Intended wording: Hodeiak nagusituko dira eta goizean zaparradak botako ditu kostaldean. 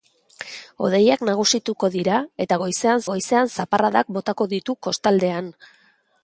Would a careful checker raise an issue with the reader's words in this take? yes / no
yes